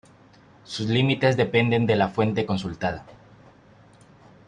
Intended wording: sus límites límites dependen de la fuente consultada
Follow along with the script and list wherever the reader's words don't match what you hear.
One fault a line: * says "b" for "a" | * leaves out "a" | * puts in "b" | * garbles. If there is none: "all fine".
* leaves out "límites"